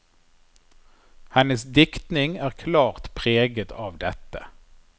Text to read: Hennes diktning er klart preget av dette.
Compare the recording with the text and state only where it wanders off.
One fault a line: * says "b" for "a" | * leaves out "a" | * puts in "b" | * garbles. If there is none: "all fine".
all fine